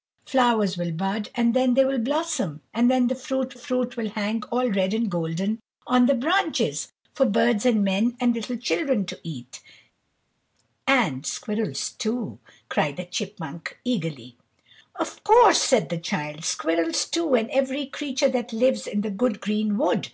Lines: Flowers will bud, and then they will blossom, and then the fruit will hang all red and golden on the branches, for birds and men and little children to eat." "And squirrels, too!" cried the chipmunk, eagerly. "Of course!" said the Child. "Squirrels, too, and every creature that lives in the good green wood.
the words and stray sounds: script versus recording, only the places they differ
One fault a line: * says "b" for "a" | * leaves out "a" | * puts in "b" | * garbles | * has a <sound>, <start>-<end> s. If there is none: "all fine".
* puts in "fruit"